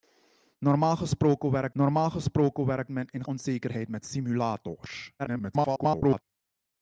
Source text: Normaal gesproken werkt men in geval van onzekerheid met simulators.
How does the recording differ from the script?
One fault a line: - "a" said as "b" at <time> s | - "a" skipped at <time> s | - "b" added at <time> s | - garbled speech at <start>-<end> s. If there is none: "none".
- "normaal gesproken werkt" added at 1.7 s
- "geval van" skipped at 3.3 s
- garbled speech at 5.2-6.2 s